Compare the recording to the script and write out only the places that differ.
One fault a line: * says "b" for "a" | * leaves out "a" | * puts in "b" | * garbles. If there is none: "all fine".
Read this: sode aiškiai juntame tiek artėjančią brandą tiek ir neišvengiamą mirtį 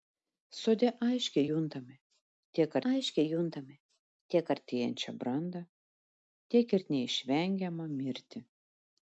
* puts in "aiškiai juntame tiek"